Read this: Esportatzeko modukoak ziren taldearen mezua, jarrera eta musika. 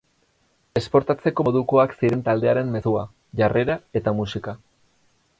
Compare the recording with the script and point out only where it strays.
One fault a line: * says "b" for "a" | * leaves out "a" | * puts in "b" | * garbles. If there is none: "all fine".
all fine